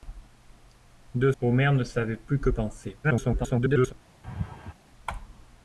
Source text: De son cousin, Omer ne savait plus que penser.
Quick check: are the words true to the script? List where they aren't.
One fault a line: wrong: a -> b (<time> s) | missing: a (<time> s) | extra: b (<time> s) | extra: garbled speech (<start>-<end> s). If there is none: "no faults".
missing: son cousin (1.3 s)
extra: garbled speech (3.0-3.9 s)